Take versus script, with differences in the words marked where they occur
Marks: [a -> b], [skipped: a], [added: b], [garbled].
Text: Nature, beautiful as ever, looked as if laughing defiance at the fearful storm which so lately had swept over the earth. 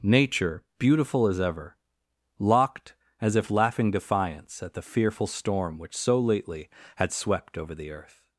Nature, beautiful as ever, [looked -> locked] as if laughing defiance at the fearful storm which so lately had swept over the earth.